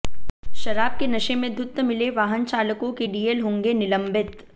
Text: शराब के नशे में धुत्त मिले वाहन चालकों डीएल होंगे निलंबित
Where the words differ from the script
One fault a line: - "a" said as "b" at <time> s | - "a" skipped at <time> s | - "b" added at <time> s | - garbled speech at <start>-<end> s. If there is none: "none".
- "के" added at 2.9 s